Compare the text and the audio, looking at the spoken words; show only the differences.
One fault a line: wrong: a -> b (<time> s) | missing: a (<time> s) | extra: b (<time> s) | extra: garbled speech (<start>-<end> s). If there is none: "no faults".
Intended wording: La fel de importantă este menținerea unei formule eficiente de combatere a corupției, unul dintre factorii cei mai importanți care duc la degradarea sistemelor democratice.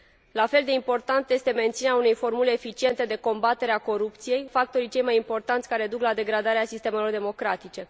missing: unul dintre (4.5 s)